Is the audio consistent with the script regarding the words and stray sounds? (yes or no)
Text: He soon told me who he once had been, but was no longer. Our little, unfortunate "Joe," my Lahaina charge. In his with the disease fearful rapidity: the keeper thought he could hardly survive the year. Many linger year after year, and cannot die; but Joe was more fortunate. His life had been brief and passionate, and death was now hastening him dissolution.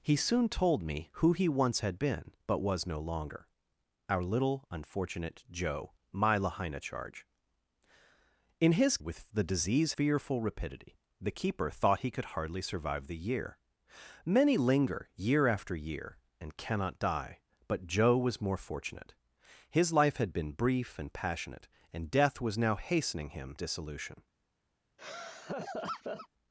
no